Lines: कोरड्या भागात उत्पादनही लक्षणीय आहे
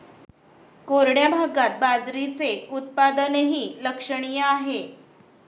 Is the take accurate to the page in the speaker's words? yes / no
no